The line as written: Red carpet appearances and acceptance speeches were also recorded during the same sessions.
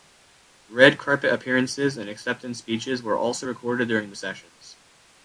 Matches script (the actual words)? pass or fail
fail